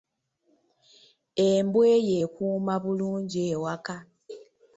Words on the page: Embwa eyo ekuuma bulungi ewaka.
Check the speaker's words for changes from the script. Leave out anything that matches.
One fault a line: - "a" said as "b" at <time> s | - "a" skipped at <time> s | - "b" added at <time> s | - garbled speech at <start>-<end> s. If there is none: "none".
none